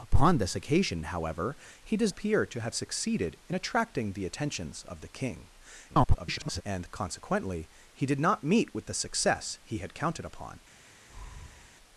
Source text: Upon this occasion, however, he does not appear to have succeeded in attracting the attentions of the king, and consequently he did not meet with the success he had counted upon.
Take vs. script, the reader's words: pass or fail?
fail